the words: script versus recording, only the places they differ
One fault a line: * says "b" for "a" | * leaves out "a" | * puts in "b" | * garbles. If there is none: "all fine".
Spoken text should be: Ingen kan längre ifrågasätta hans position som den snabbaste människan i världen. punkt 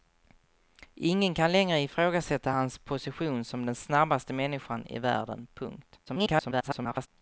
* garbles